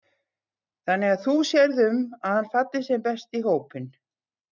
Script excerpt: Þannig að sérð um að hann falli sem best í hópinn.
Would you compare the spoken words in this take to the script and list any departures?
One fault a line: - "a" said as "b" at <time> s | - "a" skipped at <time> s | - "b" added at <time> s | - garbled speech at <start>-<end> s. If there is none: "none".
- "þú" added at 1.2 s